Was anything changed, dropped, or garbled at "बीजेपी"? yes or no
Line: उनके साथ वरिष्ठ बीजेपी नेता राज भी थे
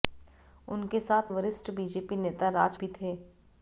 no